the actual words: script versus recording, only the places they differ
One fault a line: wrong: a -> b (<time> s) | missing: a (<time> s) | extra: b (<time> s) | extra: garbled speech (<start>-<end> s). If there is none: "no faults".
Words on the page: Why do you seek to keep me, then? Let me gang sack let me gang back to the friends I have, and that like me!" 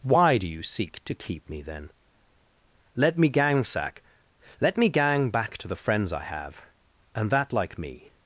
no faults